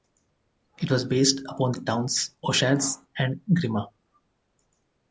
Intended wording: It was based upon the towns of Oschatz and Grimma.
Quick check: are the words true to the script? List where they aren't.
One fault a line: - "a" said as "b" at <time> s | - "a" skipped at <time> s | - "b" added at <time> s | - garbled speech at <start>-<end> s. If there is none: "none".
- "of" skipped at 2.4 s